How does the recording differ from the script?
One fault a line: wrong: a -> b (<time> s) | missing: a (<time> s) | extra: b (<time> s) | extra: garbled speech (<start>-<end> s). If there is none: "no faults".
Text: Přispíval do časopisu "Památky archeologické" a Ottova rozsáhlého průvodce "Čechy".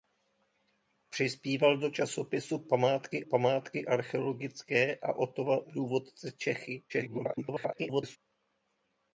extra: památky (3.2 s)
missing: rozsáhlého (5.6 s)
extra: garbled speech (6.9-8.2 s)